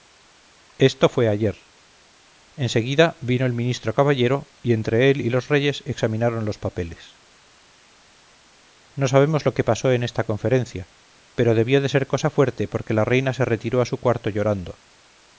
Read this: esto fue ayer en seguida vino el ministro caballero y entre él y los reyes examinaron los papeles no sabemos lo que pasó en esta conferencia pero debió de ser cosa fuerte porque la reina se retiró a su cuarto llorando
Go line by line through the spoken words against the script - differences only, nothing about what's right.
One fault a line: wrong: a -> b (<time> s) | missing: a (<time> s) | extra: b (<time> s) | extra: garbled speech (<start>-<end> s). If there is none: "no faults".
no faults